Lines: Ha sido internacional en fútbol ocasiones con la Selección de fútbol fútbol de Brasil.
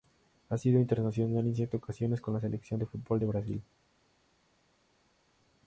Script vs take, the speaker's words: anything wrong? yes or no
yes